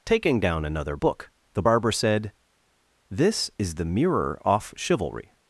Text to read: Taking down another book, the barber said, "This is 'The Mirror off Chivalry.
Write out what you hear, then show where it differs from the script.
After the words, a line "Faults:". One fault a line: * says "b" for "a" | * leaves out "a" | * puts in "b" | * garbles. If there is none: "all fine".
Taking down another book, the barber said, "This is 'The Mirror off Chivalry.
Faults:
all fine